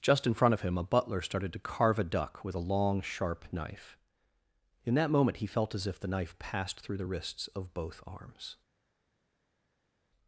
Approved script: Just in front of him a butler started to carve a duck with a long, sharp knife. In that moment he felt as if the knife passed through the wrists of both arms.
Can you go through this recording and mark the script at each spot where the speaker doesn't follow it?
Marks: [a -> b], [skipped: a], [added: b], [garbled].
Just in front of him a butler started to carve a duck with a long, sharp knife. In that moment he felt as if the knife passed through the wrists of both arms.